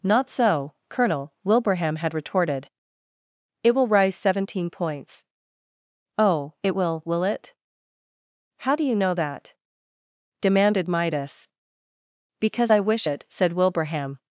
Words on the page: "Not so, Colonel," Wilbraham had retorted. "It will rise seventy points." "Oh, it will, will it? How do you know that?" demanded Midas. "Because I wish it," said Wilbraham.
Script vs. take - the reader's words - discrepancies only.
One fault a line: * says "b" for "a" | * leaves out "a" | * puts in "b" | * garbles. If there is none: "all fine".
* says "seventeen" for "seventy"